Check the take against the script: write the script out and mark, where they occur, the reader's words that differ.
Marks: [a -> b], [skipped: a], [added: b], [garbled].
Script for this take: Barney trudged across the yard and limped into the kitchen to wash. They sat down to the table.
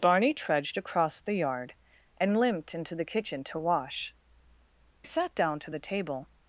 Barney trudged across the yard and limped into the kitchen to wash. [skipped: They] sat down to the table.